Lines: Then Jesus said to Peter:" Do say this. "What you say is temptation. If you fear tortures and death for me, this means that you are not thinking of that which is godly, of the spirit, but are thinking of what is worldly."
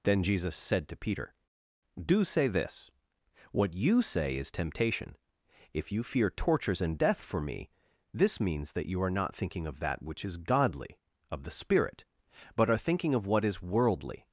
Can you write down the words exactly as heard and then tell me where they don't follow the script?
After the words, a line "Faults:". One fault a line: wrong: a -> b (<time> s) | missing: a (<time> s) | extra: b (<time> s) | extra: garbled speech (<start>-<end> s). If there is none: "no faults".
Then Jesus said to Peter:" Do say this. "What you say is temptation. If you fear tortures and death for me, this means that you are not thinking of that which is godly, of the spirit, but are thinking of what is worldly."
Faults:
no faults